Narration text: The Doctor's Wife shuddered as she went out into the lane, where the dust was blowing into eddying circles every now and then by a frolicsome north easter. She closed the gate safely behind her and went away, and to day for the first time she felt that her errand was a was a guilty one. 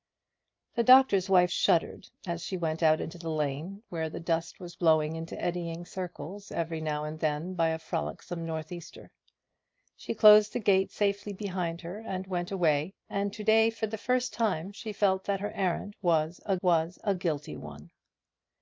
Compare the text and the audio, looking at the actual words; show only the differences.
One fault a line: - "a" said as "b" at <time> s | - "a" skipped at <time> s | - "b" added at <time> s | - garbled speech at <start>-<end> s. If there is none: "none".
none